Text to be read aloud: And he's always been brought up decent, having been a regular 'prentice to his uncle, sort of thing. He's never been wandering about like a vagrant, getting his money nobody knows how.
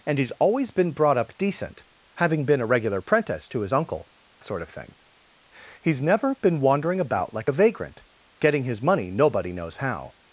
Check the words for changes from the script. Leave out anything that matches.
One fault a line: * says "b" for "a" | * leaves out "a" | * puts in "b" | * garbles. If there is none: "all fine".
all fine